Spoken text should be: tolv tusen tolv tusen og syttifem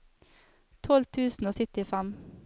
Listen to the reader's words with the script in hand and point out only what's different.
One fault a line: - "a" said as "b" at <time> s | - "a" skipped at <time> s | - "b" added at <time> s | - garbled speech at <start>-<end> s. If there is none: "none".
- "tolv tusen" skipped at 1.4 s